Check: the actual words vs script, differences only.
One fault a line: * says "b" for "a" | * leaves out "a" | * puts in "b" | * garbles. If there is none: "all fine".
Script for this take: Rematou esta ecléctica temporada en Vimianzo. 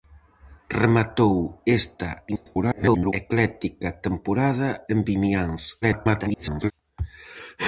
* garbles
* garbles